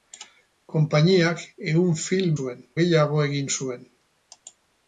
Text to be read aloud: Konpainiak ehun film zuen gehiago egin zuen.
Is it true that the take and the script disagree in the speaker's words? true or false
false